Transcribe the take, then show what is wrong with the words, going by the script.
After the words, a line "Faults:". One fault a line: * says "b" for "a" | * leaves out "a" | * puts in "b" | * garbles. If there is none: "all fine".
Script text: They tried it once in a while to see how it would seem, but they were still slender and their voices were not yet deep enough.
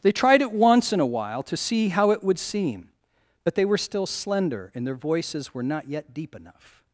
They tried it once in a while to see how it would seem, but they were still slender and their voices were not yet deep enough.
Faults:
all fine